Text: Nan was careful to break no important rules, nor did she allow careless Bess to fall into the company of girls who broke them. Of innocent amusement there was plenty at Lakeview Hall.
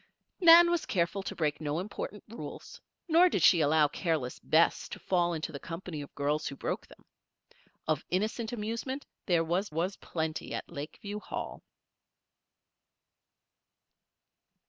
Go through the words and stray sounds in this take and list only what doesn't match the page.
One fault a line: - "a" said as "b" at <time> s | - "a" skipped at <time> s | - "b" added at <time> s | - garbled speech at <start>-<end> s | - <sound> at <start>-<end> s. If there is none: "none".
- "was" added at 9.7 s